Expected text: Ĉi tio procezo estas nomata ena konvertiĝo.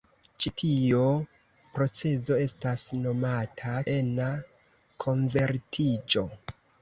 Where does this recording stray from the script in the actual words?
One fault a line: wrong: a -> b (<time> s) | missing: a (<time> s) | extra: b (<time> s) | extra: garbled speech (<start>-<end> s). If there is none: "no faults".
no faults